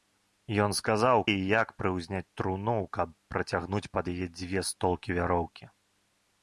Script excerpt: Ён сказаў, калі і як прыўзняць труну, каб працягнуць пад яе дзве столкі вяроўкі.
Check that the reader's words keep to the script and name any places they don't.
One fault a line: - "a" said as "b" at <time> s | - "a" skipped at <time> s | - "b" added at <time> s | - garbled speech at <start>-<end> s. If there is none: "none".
- "калі" skipped at 1.2 s